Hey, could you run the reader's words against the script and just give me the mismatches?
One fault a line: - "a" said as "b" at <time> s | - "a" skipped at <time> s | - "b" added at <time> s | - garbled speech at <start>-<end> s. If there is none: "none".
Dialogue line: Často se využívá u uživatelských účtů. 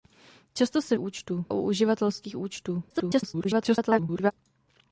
- "využívá" said as "účtů" at 1.0 s
- garbled speech at 2.9-4.3 s